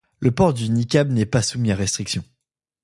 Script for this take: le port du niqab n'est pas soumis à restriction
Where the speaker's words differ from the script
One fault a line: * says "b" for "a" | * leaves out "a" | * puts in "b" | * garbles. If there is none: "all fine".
all fine